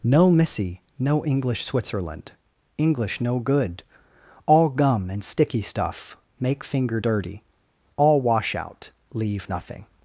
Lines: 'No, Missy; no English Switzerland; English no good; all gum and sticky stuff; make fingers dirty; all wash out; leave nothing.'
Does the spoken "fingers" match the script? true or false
false